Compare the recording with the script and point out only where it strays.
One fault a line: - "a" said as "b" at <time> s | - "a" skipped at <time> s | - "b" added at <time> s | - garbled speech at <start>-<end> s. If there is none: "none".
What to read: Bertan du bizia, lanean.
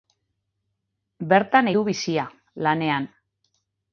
none